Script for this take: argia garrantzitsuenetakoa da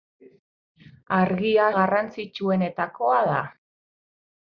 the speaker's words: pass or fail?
pass